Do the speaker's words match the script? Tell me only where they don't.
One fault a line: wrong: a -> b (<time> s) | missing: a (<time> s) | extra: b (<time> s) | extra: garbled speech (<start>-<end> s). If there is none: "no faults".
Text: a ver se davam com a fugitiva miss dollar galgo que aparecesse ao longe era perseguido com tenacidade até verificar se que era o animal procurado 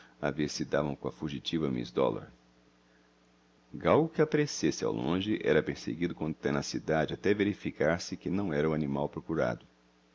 extra: não (8.3 s)